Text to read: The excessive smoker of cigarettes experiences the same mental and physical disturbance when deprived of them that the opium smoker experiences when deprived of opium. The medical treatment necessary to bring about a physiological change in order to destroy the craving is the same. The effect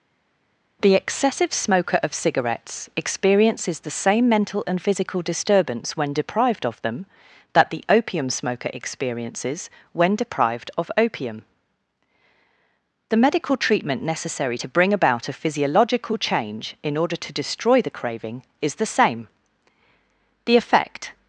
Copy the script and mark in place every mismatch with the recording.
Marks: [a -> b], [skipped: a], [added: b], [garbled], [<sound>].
The excessive smoker of cigarettes experiences the same mental and physical disturbance when deprived of them that the opium smoker experiences when deprived of opium. The medical treatment necessary to bring about a physiological change in order to destroy the craving is the same. The effect